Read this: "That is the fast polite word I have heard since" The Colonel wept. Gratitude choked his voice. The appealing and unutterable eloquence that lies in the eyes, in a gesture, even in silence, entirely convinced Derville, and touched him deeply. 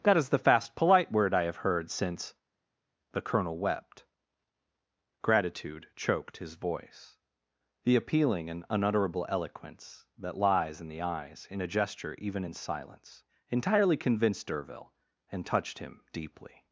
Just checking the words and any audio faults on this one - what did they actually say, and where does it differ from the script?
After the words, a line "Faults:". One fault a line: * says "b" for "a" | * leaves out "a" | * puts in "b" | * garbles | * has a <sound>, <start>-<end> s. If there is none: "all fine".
"That is the fast polite word I have heard since" The Colonel wept. Gratitude choked his voice. The appealing and unutterable eloquence that lies in the eyes, in a gesture, even in silence, entirely convinced Derville, and touched him deeply.
Faults:
all fine